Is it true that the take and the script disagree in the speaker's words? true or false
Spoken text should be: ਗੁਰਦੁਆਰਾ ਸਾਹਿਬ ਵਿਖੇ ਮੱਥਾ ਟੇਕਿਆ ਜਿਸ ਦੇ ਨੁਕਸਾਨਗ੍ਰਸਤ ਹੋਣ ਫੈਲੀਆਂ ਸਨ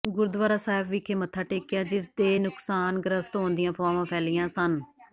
true